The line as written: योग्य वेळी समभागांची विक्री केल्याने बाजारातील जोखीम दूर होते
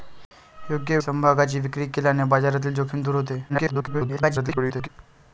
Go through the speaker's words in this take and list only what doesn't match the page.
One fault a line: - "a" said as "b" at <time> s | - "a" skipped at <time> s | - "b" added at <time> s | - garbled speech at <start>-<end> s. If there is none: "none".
- "वेळी" skipped at 1.0 s
- garbled speech at 3.5-4.9 s